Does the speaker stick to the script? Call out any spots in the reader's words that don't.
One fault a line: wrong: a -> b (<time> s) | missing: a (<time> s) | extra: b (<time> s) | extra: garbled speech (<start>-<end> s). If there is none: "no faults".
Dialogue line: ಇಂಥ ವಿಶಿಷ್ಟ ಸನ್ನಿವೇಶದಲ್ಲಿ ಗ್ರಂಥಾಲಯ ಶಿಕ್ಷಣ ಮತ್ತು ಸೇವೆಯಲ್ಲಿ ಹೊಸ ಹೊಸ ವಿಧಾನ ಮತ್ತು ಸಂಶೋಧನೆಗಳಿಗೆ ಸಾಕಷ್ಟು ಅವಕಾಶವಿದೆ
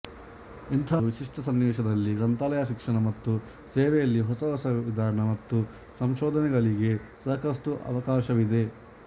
no faults